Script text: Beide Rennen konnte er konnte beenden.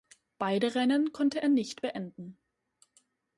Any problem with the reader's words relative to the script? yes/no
yes